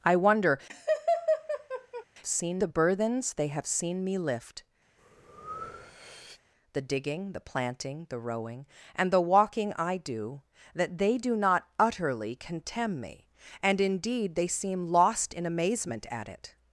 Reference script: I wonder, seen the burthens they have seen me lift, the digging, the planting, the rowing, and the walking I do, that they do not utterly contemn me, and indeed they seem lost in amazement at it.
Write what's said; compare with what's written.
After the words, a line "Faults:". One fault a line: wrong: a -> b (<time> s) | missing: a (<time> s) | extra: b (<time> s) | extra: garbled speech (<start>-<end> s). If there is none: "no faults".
I wonder, seen the burthens they have seen me lift, the digging, the planting, the rowing, and the walking I do, that they do not utterly contemn me, and indeed they seem lost in amazement at it.
Faults:
no faults